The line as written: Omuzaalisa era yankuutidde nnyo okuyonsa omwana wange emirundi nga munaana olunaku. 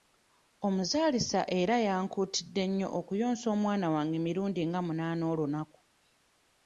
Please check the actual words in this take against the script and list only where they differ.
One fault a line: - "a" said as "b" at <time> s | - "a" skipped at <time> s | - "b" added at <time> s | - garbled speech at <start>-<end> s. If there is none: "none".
none